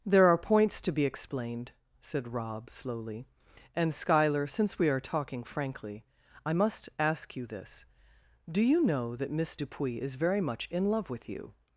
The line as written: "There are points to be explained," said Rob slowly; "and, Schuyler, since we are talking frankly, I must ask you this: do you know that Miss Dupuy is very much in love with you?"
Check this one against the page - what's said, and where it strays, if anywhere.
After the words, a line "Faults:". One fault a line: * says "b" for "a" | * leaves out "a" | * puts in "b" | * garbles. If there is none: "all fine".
"There are points to be explained," said Rob slowly; "and, Schuyler, since we are talking frankly, I must ask you this: do you know that Miss Dupuy is very much in love with you?"
Faults:
all fine